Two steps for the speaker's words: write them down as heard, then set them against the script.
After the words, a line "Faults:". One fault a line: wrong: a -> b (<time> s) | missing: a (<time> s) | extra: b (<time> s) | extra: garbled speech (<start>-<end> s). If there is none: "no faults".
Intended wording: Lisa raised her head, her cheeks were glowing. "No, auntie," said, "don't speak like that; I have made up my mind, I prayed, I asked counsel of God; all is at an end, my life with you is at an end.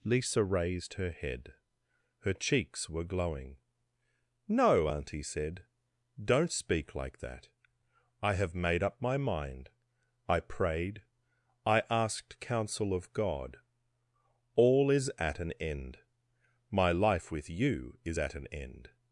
Lisa raised her head, her cheeks were glowing. "No, auntie," said, "don't speak like that; I have made up my mind, I prayed, I asked counsel of God; all is at an end, my life with you is at an end.
Faults:
no faults